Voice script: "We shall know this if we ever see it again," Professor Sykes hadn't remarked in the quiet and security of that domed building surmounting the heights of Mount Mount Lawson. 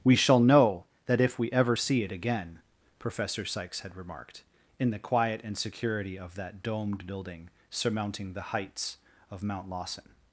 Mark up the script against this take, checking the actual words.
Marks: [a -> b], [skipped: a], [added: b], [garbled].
"We shall know [this -> that] if we ever see it again," Professor Sykes [hadn't -> had] remarked in the quiet and security of that domed building surmounting the heights of Mount [skipped: Mount] Lawson.